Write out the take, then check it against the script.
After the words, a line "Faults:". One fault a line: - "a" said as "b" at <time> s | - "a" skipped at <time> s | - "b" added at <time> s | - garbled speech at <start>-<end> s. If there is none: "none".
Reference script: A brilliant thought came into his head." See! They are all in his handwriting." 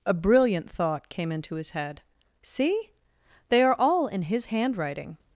A brilliant thought came into his head." See! They are all in his handwriting."
Faults:
none